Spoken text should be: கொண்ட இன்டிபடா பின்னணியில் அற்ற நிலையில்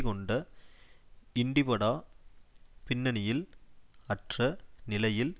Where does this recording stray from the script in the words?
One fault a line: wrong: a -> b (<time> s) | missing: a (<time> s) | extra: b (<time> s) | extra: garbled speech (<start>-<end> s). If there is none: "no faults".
no faults